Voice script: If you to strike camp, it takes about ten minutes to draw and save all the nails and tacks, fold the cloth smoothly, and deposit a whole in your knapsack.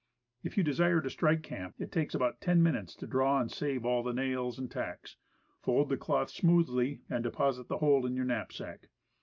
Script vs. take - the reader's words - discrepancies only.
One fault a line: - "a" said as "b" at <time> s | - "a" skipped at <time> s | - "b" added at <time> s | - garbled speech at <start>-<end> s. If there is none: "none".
- "desire" added at 0.6 s
- "a" said as "the" at 7.7 s